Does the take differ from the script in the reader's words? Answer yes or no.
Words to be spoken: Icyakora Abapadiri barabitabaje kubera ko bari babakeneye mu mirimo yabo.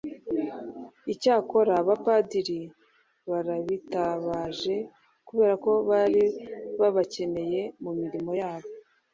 no